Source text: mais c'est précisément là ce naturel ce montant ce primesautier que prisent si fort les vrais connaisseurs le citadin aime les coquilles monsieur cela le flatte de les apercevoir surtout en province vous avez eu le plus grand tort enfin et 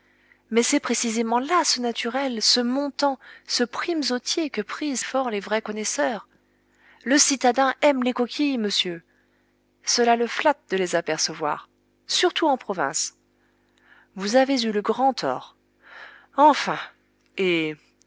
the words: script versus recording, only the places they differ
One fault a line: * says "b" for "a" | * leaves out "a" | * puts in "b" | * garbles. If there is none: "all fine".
* leaves out "si"
* leaves out "plus"